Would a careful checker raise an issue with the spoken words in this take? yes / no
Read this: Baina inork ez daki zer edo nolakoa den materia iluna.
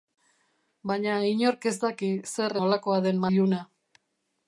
yes